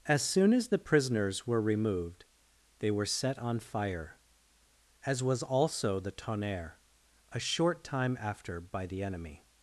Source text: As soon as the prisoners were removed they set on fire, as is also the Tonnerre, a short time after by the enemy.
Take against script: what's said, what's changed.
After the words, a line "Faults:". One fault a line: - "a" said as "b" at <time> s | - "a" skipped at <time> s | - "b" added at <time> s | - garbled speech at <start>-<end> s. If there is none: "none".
As soon as the prisoners were removed they were set on fire, as was also the Tonnerre, a short time after by the enemy.
Faults:
- "were" added at 2.9 s
- "is" said as "was" at 5.2 s